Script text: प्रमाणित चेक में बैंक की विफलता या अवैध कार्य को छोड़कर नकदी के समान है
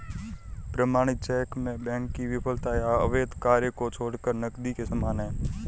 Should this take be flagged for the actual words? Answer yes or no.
no